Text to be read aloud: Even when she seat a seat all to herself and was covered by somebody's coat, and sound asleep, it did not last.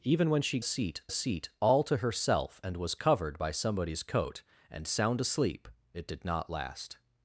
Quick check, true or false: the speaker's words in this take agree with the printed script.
true